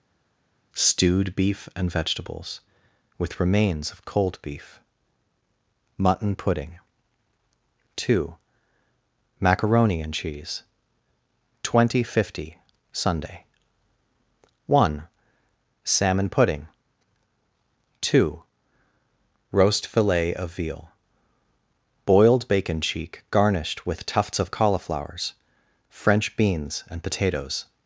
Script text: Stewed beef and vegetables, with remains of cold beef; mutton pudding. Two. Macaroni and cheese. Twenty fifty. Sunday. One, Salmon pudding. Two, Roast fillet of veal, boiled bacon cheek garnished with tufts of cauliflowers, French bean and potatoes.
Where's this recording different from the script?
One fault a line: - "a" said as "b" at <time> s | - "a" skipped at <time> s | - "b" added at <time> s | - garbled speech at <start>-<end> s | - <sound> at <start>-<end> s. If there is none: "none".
- "bean" said as "beans" at 26.4 s